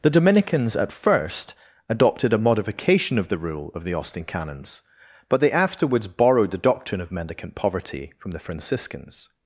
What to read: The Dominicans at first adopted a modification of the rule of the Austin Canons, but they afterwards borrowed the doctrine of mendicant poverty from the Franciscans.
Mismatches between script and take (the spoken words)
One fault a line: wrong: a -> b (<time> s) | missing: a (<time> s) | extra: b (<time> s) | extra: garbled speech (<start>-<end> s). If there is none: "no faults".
no faults